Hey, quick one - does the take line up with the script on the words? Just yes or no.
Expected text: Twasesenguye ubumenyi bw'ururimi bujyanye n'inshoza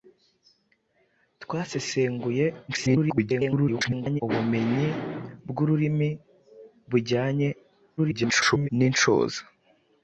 no